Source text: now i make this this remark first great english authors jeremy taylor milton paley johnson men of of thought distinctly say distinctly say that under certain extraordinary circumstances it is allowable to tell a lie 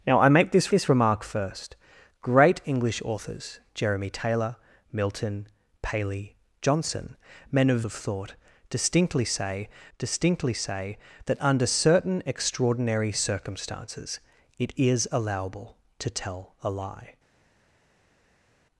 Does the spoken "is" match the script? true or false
true